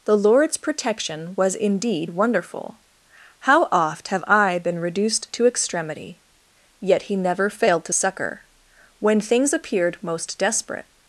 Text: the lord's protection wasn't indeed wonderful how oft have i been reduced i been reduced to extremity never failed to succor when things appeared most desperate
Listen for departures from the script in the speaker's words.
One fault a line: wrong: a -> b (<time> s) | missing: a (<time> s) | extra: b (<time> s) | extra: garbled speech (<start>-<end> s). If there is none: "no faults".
wrong: wasn't -> was (1.4 s)
wrong: i been reduced to extremity -> to extremity yet he (5.3 s)